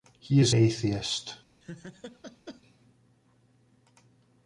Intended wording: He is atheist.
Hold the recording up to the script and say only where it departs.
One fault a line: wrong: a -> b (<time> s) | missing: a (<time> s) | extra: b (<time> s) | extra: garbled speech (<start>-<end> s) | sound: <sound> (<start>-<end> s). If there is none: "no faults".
sound: laugh (1.6-2.6 s)